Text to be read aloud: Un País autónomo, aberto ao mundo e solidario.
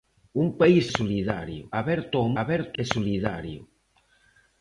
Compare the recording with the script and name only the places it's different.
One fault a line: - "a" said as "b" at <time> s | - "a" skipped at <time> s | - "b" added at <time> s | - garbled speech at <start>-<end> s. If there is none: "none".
- "autónomo" said as "solidario" at 1.0 s
- "mundo" said as "aberto" at 2.4 s